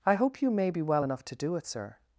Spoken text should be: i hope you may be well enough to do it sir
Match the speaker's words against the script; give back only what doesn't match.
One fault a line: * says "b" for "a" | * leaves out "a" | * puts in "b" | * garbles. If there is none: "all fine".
all fine